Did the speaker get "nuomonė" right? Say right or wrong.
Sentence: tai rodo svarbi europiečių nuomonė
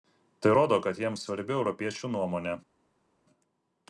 right